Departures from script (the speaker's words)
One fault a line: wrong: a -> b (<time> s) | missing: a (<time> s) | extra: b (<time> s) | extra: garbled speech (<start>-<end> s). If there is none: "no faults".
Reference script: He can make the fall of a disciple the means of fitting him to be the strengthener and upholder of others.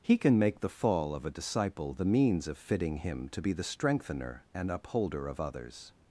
no faults